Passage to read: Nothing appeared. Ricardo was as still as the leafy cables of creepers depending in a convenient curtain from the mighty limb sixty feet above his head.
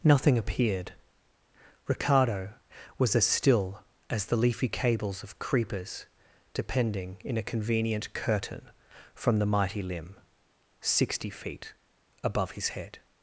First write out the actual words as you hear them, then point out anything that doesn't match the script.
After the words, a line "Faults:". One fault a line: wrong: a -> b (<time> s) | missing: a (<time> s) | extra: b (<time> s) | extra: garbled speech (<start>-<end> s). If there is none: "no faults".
Nothing appeared. Ricardo was as still as the leafy cables of creepers depending in a convenient curtain from the mighty limb sixty feet above his head.
Faults:
no faults